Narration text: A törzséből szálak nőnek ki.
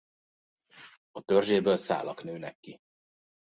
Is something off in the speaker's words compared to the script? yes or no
no